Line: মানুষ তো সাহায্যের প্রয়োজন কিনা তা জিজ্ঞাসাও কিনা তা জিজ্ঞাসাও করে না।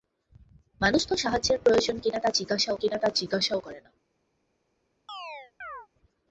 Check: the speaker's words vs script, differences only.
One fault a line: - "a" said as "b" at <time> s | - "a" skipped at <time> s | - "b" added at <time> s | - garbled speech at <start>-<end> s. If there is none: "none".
none